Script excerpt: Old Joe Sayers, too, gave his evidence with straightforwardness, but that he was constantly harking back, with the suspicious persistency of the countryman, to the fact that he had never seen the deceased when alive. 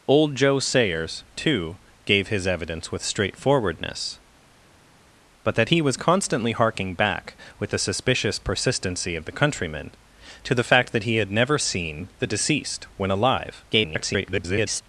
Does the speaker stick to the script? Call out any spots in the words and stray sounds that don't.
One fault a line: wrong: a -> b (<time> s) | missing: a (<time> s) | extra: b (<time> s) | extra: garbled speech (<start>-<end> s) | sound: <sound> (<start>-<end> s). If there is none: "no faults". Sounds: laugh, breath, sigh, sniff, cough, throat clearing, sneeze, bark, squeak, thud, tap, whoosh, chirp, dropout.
extra: garbled speech (13.7-14.8 s)